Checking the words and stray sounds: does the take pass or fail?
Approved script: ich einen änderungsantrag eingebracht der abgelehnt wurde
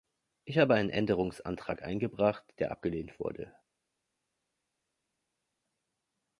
fail